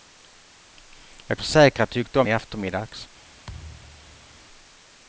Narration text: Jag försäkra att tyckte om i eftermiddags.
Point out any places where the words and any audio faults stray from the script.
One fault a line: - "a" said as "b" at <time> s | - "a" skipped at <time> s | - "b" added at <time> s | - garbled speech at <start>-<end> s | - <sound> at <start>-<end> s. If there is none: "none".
- thud at 3.4-4.4 s